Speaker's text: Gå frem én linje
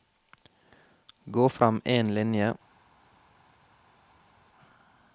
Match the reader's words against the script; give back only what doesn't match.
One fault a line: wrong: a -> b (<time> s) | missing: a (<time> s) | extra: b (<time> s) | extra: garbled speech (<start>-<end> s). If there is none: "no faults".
no faults